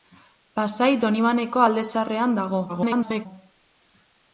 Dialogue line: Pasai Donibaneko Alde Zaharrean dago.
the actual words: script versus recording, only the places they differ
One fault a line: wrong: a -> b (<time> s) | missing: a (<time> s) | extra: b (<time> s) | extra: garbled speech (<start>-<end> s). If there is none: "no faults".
extra: garbled speech (2.7-3.3 s)